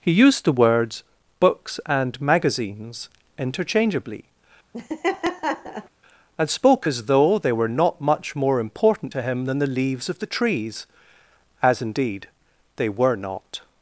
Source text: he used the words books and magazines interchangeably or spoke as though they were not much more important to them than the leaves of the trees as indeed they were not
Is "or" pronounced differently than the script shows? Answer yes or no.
yes